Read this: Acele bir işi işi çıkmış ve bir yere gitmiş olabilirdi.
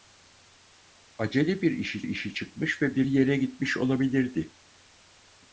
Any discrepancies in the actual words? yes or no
no